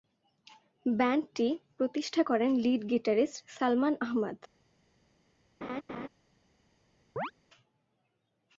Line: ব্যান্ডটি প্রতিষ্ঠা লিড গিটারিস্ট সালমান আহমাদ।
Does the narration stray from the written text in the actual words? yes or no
yes